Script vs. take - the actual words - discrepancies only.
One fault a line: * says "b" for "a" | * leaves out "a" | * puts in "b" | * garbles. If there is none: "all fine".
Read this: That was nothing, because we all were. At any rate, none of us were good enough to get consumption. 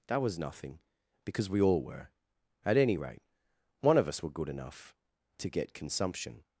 * says "one" for "none"